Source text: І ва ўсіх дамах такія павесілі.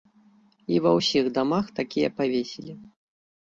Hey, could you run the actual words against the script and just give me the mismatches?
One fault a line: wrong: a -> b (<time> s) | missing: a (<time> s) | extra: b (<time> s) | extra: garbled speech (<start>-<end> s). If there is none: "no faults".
no faults